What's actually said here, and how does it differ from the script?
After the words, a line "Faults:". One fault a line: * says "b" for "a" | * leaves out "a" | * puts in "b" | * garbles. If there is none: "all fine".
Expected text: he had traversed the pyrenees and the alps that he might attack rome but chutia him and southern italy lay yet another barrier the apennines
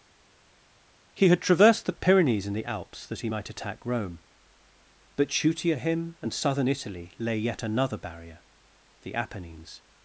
he had traversed the pyrenees and the alps that he might attack rome but chutia him and southern italy lay yet another barrier the apennines
Faults:
all fine